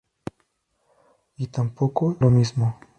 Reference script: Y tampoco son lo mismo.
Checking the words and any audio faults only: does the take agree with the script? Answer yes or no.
no